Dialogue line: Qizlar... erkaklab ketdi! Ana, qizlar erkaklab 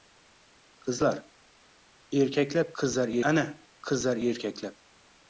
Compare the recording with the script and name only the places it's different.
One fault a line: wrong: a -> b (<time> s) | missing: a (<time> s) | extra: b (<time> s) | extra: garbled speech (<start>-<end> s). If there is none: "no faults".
wrong: ketdi -> qizlar (2.8 s)